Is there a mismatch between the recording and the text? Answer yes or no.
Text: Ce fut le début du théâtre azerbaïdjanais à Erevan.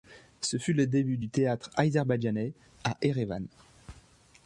no